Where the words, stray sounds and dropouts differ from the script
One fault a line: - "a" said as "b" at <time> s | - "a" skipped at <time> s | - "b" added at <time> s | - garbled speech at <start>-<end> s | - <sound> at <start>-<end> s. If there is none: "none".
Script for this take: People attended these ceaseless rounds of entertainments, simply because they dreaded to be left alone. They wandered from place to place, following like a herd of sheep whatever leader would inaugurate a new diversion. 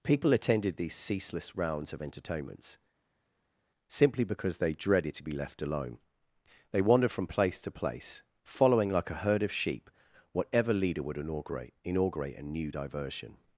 - "inaugurate" added at 11.8 s